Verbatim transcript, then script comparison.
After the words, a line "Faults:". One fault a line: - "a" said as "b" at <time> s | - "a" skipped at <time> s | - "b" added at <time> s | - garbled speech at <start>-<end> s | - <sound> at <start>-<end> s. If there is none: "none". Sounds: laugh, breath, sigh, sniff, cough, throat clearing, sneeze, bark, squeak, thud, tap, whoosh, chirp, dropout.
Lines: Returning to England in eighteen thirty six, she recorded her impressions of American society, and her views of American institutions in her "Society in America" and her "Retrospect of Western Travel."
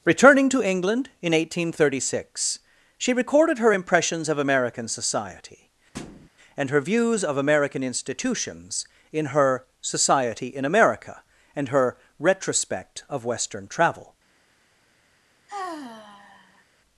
Returning to England in eighteen thirty six, she recorded her impressions of American society, and her views of American institutions in her "Society in America" and her "Retrospect of Western Travel."
Faults:
- thud at 5.9-6.3 s
- sigh at 15.5-16.6 s